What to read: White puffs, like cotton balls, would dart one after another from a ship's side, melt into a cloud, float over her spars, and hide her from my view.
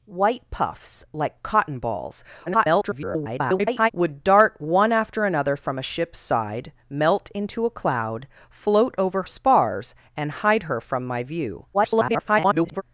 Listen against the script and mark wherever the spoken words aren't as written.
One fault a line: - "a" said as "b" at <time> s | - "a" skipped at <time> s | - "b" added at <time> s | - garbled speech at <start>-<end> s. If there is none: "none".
- garbled speech at 2.5-3.9 s
- "her" skipped at 9.2 s
- garbled speech at 11.7-12.8 s